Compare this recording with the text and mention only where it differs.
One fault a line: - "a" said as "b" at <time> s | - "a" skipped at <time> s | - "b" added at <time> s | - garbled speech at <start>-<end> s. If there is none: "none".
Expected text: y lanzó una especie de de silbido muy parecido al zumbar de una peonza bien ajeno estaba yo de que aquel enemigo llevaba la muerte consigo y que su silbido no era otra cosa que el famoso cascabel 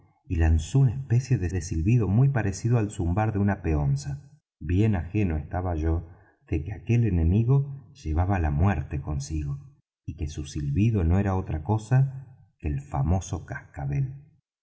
none